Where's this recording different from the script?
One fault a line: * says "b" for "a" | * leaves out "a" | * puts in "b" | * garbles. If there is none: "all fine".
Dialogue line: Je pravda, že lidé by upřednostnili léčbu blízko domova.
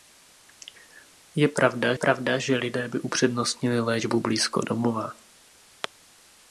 * puts in "pravda"